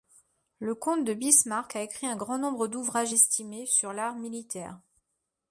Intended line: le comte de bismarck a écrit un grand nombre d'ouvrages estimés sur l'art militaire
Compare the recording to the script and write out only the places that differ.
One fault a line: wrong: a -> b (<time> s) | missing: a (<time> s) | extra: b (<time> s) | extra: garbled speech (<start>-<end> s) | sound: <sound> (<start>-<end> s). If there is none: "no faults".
no faults